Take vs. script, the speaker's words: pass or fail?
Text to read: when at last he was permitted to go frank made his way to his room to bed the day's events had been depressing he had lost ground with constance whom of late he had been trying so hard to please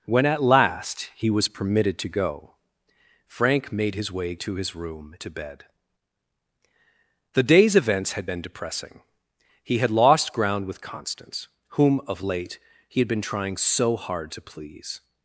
pass